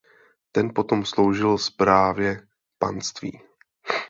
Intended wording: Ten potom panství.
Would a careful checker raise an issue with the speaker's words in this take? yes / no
yes